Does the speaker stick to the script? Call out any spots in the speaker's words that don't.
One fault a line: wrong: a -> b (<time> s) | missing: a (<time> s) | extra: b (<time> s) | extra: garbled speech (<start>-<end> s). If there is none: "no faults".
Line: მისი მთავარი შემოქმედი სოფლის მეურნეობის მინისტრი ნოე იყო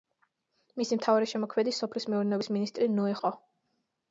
no faults